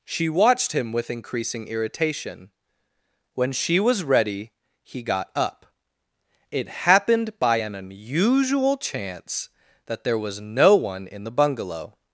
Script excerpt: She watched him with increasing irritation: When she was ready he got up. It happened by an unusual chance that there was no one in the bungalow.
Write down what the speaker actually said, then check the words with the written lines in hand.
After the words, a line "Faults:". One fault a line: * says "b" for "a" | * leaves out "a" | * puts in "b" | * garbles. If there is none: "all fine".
She watched him with increasing irritation: When she was ready he got up. It happened by an unusual chance that there was no one in the bungalow.
Faults:
all fine